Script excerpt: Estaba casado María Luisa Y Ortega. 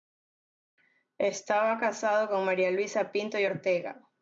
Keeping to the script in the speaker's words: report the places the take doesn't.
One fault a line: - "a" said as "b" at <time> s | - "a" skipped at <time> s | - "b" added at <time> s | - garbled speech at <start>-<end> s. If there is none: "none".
- "con" added at 2.3 s
- "Pinto" added at 3.1 s